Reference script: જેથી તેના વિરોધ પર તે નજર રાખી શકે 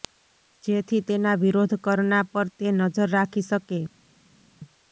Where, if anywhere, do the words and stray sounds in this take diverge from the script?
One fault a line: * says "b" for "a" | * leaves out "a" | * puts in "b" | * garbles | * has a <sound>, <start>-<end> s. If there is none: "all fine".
* puts in "કરના"